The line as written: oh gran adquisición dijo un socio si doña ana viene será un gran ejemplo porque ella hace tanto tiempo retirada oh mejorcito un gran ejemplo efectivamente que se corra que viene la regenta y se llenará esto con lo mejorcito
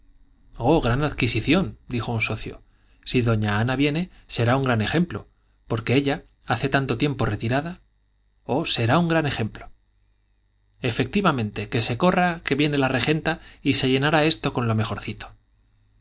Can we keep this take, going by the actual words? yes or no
no